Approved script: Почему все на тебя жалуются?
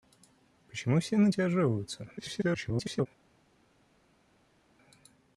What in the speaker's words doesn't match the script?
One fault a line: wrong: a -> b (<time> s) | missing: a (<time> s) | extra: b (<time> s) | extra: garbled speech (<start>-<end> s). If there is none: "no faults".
extra: garbled speech (2.2-3.1 s)